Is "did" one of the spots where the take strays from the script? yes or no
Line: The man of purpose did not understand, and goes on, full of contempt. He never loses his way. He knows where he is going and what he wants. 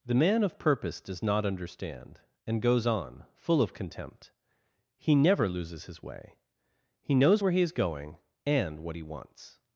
yes